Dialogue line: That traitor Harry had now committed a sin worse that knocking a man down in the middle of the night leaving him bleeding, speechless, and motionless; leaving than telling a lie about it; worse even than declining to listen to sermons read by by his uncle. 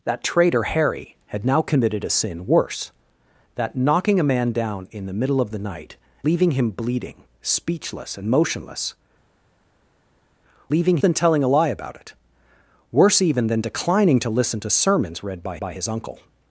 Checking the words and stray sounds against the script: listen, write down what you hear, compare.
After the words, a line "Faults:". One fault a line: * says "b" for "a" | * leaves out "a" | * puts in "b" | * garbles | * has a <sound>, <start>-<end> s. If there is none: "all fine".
That traitor Harry had now committed a sin worse that knocking a man down in the middle of the night leaving him bleeding, speechless, and motionless; leaving than telling a lie about it; worse even than declining to listen to sermons read by by his uncle.
Faults:
all fine